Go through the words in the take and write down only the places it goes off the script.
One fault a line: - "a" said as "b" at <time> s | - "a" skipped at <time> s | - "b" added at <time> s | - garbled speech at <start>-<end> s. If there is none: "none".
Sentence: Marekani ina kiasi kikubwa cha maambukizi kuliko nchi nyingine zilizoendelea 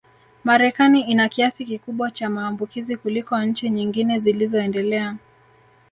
none